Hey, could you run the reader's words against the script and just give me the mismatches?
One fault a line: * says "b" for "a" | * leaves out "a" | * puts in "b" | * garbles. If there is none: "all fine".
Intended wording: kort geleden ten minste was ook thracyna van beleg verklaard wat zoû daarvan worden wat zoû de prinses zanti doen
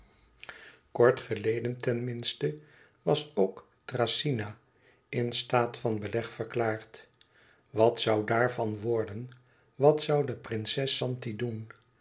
* puts in "in staat"